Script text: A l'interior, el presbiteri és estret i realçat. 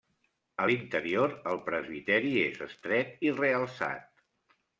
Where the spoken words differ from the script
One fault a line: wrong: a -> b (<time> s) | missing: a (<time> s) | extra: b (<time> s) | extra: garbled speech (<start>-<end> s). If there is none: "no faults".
no faults